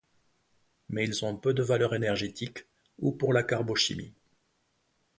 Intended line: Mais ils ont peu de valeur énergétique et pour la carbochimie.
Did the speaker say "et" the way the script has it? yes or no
no